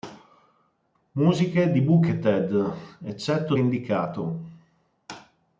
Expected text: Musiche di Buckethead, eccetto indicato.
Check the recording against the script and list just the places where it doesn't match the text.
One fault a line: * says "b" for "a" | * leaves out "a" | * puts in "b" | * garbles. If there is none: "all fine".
all fine